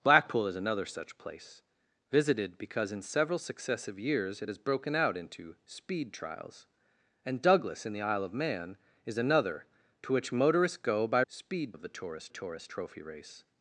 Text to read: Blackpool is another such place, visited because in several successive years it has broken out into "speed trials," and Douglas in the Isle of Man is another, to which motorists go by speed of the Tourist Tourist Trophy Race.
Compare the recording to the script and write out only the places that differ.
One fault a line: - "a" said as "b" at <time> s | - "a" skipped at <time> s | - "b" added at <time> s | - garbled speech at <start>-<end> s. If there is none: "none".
none